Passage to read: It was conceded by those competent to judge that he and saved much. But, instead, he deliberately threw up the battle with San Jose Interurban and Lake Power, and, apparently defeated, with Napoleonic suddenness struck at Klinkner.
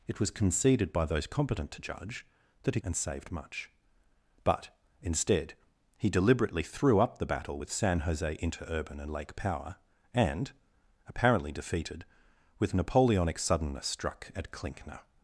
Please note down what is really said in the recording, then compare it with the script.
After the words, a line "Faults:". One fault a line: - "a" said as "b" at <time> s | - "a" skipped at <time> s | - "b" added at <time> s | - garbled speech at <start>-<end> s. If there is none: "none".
It was conceded by those competent to judge that he and saved much. But, instead, he deliberately threw up the battle with San Jose Interurban and Lake Power, and, apparently defeated, with Napoleonic suddenness struck at Klinkner.
Faults:
none